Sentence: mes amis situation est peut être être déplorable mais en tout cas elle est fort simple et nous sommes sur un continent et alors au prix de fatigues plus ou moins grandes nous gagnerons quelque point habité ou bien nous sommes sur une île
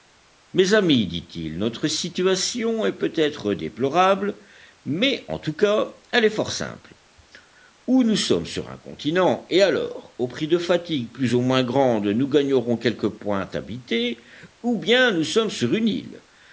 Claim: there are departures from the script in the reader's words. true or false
true